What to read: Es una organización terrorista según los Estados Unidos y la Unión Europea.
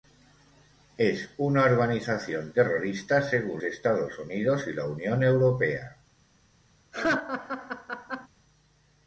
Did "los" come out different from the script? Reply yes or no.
yes